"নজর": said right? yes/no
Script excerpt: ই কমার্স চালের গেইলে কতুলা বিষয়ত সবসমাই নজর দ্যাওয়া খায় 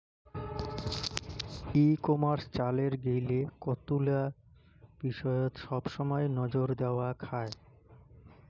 yes